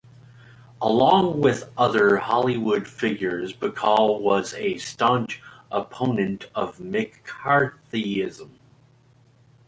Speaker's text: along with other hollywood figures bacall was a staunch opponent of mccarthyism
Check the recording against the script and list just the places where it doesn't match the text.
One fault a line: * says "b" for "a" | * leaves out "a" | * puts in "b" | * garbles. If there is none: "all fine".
all fine